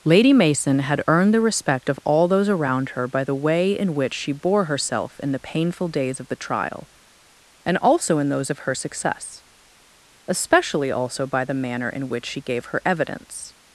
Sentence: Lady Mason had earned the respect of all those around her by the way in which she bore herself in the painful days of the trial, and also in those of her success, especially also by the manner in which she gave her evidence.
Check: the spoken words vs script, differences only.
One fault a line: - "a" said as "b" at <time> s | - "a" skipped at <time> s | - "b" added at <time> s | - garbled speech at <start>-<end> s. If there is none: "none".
none